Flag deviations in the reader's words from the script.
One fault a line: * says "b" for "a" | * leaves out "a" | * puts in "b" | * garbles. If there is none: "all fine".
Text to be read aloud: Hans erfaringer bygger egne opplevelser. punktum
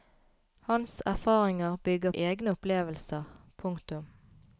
all fine